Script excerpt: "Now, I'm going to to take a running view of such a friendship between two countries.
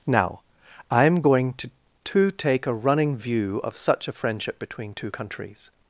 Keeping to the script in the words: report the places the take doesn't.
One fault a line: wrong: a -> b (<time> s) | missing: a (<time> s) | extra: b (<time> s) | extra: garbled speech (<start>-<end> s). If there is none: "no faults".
no faults